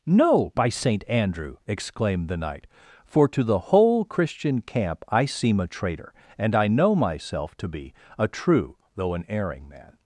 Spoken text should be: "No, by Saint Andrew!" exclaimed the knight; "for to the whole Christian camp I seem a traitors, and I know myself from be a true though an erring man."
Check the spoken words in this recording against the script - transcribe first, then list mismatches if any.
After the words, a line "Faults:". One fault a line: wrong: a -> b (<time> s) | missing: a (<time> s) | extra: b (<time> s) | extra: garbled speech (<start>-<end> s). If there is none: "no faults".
"No, by Saint Andrew!" exclaimed the knight; "for to the whole Christian camp I seem a traitor, and I know myself to be a true though an erring man."
Faults:
wrong: traitors -> traitor (5.7 s)
wrong: from -> to (7.6 s)